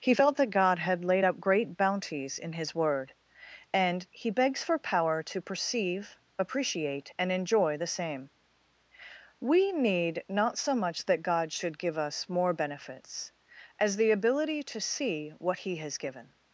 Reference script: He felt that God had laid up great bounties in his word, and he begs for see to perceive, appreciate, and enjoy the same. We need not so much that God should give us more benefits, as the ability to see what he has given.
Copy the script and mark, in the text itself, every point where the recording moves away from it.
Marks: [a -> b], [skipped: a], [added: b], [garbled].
He felt that God had laid up great bounties in his word, and he begs for [see -> power] to perceive, appreciate, and enjoy the same. We need not so much that God should give us more benefits, as the ability to see what he has given.